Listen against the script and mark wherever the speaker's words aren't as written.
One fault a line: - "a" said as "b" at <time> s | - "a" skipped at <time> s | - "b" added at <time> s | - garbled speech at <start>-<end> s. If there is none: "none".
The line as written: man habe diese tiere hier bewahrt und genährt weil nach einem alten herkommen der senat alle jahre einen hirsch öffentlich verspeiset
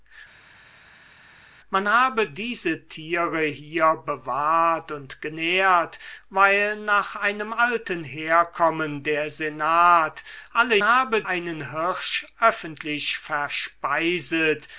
- "jahre" said as "habe" at 10.8 s